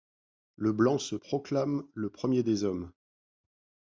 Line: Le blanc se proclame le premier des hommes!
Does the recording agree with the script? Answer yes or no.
yes